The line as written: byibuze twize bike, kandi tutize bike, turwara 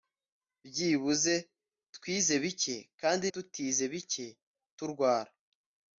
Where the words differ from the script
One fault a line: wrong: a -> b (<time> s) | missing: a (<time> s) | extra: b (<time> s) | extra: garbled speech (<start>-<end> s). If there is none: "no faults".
no faults